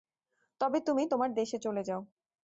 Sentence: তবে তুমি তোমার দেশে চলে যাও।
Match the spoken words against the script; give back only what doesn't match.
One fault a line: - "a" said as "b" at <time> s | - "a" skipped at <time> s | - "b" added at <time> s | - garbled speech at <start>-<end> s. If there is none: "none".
none